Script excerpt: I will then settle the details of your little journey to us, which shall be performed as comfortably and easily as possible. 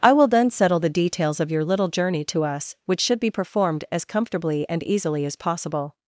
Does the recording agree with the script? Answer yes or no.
no